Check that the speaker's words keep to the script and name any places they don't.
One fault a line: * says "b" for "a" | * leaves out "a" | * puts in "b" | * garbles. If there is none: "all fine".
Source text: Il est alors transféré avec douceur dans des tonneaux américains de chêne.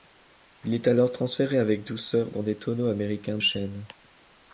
* leaves out "de"